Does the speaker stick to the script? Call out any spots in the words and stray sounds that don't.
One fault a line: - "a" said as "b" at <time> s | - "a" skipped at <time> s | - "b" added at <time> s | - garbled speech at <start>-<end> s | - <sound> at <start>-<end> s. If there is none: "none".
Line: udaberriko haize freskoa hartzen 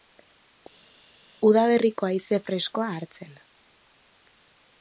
none